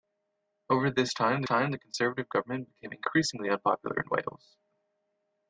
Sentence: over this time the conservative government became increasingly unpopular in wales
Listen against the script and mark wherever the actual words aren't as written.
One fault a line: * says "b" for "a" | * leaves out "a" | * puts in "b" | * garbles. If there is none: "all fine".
* puts in "time"